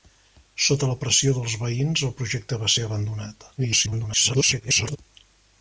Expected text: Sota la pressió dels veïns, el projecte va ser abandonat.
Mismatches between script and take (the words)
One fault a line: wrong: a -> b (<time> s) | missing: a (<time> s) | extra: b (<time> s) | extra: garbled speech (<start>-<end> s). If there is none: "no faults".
extra: garbled speech (3.6-5.0 s)